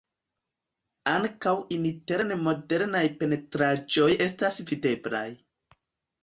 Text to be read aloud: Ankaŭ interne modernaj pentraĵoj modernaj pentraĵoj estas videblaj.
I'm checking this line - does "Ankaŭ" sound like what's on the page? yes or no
yes